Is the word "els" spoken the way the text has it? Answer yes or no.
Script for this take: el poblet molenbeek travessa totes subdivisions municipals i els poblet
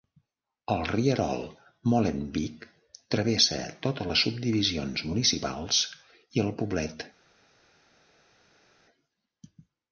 no